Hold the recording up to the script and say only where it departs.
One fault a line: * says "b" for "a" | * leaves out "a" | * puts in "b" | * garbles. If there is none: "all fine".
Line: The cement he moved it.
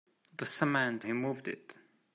all fine